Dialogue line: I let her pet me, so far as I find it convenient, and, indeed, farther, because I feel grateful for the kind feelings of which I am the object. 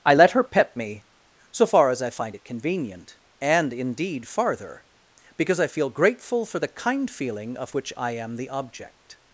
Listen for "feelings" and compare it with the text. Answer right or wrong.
wrong